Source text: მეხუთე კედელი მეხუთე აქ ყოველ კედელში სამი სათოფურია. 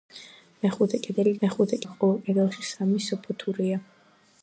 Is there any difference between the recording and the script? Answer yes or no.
no